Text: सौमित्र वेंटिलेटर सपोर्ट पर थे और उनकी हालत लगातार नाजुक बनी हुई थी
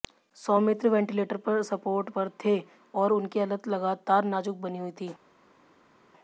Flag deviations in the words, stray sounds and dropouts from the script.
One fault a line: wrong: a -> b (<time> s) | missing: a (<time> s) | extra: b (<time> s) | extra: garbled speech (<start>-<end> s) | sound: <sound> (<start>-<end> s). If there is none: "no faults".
no faults